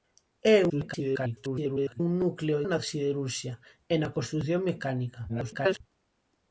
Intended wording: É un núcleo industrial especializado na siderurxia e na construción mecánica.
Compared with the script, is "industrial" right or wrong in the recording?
wrong